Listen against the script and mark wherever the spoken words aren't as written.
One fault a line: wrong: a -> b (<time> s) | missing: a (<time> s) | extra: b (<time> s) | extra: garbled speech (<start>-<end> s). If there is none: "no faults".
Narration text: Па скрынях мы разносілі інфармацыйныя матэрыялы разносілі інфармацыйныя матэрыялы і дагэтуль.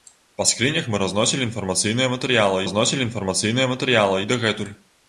no faults